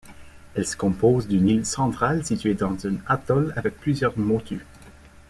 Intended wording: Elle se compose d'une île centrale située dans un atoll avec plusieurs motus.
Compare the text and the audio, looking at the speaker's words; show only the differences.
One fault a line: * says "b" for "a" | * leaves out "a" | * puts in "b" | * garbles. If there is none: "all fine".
all fine